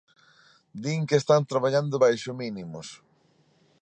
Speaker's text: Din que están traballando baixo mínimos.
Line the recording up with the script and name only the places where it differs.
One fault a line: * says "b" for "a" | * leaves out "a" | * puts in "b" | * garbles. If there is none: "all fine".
all fine